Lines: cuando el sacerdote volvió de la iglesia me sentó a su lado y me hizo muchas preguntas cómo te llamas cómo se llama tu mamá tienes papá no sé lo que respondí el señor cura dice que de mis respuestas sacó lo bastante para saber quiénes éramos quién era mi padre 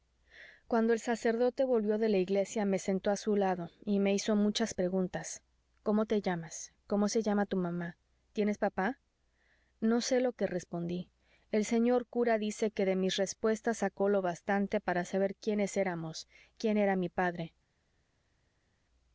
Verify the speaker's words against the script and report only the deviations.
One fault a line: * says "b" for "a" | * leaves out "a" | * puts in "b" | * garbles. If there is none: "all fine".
all fine